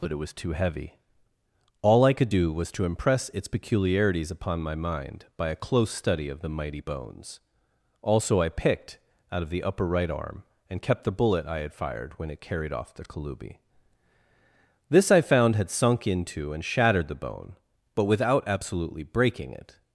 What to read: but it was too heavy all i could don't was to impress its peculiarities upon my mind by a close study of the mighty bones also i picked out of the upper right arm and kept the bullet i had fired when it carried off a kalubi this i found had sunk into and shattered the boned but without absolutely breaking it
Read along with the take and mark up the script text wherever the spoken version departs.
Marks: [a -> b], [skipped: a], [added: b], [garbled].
but it was too heavy all i could [don't -> do] was to impress its peculiarities upon my mind by a close study of the mighty bones also i picked out of the upper right arm and kept the bullet i had fired when it carried off [a -> the] kalubi this i found had sunk into and shattered the [boned -> bone] but without absolutely breaking it